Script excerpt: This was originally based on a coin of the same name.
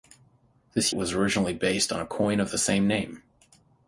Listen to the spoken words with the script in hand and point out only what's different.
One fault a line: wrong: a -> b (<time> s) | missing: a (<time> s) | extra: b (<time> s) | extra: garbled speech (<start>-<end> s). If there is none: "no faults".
no faults